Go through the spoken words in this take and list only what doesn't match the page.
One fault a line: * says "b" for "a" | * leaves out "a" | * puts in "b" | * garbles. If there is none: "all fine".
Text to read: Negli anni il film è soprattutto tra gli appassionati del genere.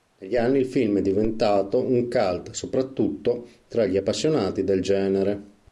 * puts in "diventato un cult"